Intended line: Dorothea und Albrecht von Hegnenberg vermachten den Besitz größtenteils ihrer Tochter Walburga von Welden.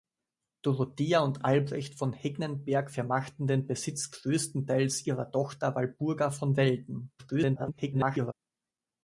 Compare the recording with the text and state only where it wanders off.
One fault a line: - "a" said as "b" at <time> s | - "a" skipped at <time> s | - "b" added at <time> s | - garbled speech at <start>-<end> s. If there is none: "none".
- garbled speech at 7.2-8.3 s